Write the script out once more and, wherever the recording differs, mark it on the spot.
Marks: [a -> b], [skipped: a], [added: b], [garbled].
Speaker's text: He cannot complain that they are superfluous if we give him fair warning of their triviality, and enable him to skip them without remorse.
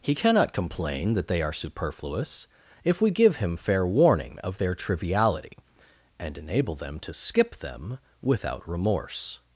He cannot complain that they are superfluous if we give him fair warning of their triviality, and enable [him -> them] to skip them without remorse.